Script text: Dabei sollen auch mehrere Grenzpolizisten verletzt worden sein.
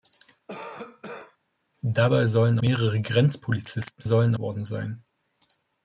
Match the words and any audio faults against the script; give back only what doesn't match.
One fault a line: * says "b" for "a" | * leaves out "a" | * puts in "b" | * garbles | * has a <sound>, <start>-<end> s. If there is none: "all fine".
* has a cough, 0.5-1.4 s
* leaves out "auch"
* says "sollen" for "verletzt"